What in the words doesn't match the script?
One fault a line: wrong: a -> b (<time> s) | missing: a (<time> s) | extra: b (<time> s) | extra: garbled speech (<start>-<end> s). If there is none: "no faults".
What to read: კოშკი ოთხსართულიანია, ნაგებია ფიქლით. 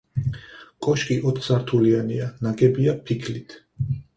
no faults